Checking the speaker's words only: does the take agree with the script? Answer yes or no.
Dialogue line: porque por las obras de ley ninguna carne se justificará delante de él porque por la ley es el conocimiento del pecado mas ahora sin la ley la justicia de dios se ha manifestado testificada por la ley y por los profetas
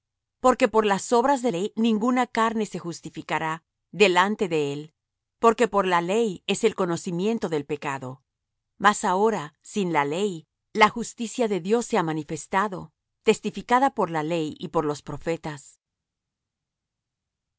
yes